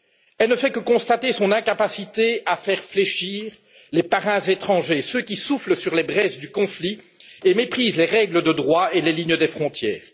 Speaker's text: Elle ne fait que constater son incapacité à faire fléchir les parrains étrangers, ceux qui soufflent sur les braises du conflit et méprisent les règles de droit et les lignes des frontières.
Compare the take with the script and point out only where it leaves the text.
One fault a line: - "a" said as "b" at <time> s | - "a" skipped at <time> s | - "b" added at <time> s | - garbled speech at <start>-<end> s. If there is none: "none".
none